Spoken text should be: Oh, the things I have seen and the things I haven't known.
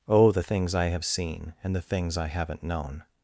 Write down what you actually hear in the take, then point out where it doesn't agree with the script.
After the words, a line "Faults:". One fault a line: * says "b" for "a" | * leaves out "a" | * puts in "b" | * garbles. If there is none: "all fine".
Oh, the things I have seen and the things I haven't known.
Faults:
all fine